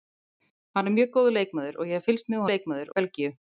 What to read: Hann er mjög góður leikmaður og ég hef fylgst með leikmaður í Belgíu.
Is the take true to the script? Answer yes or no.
yes